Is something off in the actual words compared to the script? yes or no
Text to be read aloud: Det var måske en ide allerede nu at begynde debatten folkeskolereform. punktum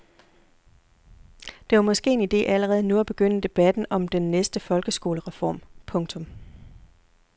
yes